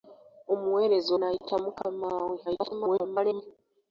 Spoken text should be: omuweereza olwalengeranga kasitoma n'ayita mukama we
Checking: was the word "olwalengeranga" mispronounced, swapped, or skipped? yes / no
yes